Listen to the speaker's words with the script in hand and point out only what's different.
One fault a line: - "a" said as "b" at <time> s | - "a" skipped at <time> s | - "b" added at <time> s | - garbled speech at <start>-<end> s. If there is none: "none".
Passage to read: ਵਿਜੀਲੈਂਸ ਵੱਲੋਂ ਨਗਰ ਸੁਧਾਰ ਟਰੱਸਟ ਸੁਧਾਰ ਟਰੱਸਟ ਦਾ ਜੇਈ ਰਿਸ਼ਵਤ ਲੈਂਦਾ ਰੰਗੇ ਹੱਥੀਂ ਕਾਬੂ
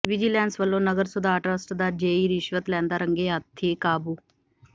- "ਸੁਧਾਰ ਟਰੱਸਟ" skipped at 1.7 s